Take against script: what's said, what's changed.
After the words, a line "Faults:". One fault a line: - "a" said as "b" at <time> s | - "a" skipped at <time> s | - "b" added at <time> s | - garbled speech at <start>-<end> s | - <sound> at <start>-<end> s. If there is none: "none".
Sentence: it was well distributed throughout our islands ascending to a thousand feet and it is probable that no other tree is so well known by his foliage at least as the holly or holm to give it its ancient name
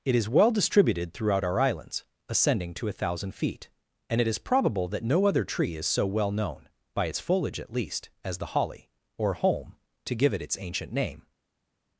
it is well distributed throughout our islands ascending to a thousand feet and it is probable that no other tree is so well known by its foliage at least as the holly or holm to give it its ancient name
Faults:
- "was" said as "is" at 0.1 s
- "his" said as "its" at 7.0 s